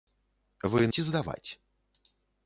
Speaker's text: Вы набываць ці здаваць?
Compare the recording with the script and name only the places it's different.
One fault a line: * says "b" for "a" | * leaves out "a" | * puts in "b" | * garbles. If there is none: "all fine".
* leaves out "набываць"